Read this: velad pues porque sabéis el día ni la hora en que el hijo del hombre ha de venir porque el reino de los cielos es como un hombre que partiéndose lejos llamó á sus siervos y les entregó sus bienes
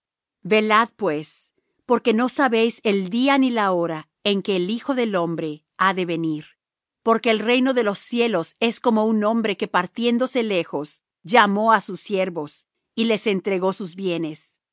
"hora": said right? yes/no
yes